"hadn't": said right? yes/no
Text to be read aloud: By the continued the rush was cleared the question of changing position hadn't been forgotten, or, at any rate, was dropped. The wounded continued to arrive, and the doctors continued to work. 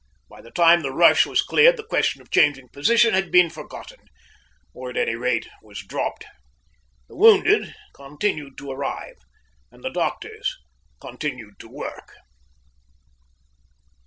no